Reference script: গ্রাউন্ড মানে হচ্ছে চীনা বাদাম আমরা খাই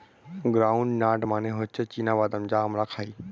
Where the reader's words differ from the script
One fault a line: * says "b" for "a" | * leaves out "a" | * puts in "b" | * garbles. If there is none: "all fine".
* puts in "নাট"
* puts in "যা"